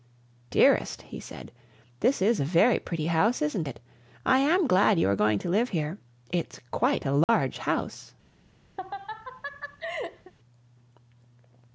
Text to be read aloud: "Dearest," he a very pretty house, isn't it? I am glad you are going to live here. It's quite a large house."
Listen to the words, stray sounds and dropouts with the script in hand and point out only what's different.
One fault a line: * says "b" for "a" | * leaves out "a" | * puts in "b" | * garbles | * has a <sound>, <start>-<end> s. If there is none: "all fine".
* puts in "said this is"
* has a dropout, 7.2-7.3 s
* has a laugh, 8.8-10.3 s